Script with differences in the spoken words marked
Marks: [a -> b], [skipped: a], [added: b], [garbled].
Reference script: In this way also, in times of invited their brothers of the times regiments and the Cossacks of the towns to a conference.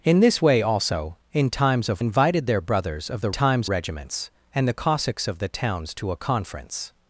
In this way also, in times of invited their brothers of the times regiments and the Cossacks of the towns to a conference.